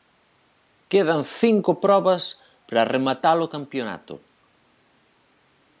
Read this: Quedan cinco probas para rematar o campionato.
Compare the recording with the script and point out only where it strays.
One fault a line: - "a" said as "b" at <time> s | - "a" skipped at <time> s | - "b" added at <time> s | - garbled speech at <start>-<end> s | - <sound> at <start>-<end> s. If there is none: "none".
none